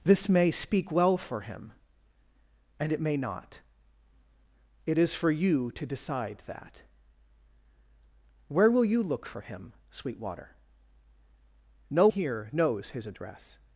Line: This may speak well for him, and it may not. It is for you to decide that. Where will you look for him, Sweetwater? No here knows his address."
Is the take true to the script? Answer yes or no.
yes